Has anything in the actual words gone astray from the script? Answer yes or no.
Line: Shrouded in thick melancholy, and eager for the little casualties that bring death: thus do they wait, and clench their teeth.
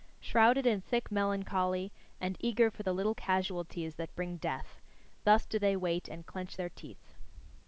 no